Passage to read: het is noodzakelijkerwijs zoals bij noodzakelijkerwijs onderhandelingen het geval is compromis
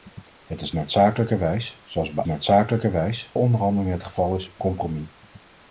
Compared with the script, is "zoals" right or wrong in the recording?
right